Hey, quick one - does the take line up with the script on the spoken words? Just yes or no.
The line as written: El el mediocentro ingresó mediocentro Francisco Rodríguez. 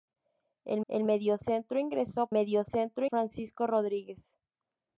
yes